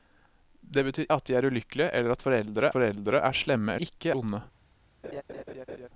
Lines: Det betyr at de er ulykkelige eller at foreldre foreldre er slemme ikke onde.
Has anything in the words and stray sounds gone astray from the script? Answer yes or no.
yes